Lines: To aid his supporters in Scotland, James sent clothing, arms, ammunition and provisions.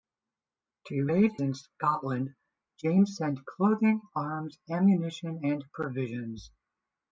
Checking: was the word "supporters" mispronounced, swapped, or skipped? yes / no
yes